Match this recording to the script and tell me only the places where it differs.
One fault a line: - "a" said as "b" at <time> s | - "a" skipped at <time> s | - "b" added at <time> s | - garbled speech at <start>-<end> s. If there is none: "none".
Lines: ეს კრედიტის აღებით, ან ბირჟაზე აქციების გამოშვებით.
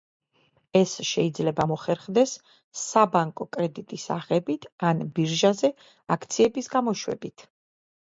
- "შეიძლება მოხერხდეს საბანკო" added at 1.1 s